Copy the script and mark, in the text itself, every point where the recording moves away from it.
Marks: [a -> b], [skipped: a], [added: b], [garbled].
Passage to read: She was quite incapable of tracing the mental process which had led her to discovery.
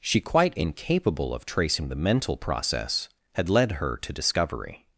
She [skipped: was] quite incapable of tracing the mental process [skipped: which] had led her to discovery.